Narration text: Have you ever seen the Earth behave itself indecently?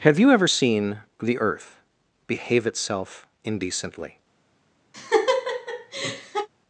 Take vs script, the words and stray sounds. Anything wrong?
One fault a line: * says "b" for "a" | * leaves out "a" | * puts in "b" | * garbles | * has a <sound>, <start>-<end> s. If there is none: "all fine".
* has a laugh, 4.9-6.5 s